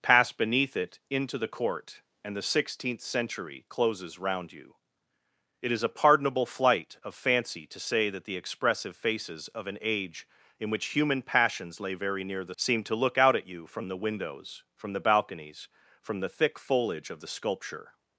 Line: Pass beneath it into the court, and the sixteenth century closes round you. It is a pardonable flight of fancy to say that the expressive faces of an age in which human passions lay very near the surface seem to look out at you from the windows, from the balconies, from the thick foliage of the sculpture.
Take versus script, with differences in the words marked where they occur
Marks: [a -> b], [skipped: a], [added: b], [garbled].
Pass beneath it into the court, and the sixteenth century closes round you. It is a pardonable flight of fancy to say that the expressive faces of an age in which human passions lay very near the [skipped: surface] seem to look out at you from the windows, from the balconies, from the thick foliage of the sculpture.